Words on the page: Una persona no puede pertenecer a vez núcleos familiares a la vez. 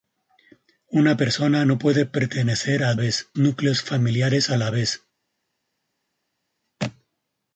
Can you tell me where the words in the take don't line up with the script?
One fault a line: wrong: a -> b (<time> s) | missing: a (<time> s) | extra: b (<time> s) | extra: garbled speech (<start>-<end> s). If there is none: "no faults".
no faults